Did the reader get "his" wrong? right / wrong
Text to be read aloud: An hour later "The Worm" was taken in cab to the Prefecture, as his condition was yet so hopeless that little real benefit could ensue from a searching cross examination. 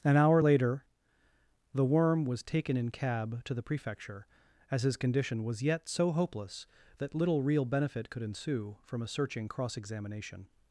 right